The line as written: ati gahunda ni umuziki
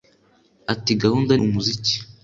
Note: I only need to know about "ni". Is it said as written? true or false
false